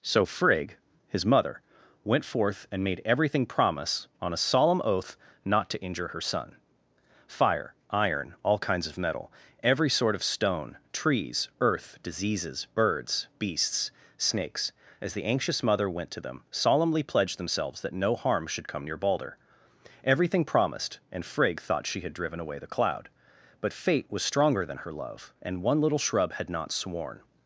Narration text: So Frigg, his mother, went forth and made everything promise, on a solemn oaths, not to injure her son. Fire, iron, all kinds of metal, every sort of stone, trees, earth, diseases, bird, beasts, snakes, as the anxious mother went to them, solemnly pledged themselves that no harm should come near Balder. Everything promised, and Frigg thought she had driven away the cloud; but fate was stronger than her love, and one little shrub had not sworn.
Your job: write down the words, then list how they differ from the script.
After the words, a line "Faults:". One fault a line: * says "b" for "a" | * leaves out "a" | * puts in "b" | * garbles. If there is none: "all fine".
So Frigg, his mother, went forth and made everything promise, on a solemn oath, not to injure her son. Fire, iron, all kinds of metal, every sort of stone, trees, earth, diseases, birds, beasts, snakes, as the anxious mother went to them, solemnly pledged themselves that no harm should come near Balder. Everything promised, and Frigg thought she had driven away the cloud; but fate was stronger than her love, and one little shrub had not sworn.
Faults:
* says "oath" for "oaths"
* says "birds" for "bird"